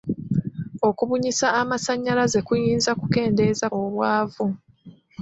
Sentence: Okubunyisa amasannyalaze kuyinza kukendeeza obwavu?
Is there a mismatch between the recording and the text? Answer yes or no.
no